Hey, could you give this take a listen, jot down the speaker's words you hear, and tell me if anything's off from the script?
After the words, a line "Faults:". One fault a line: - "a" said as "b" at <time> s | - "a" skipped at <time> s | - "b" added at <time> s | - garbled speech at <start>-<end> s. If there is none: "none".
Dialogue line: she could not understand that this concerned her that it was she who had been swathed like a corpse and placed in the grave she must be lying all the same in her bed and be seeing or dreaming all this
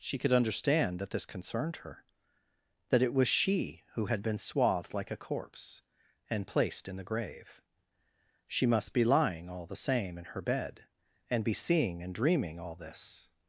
she could understand that this concerned her that it was she who had been swathed like a corpse and placed in the grave she must be lying all the same in her bed and be seeing and dreaming all this
Faults:
- "not" skipped at 0.3 s
- "or" said as "and" at 12.0 s